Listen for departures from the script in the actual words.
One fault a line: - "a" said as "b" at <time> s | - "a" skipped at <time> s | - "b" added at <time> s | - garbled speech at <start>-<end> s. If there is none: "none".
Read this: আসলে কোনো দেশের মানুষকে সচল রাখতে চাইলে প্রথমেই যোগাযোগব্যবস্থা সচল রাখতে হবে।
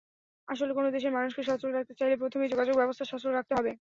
none